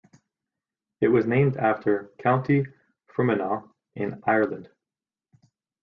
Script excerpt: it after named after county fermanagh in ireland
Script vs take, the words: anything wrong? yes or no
yes